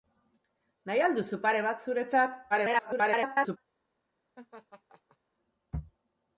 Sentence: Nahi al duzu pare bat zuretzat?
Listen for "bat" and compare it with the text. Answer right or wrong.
right